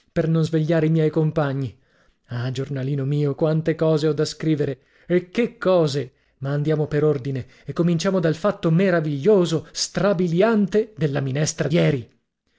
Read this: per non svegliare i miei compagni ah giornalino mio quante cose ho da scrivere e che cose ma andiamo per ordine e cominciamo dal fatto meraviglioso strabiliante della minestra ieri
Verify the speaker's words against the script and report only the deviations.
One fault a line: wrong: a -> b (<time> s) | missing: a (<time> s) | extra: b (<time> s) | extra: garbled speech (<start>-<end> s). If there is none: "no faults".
no faults